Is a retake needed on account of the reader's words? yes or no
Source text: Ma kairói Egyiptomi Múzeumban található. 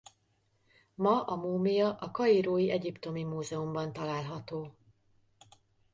yes